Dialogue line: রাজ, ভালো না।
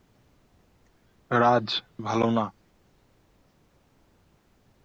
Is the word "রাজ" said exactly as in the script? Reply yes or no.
yes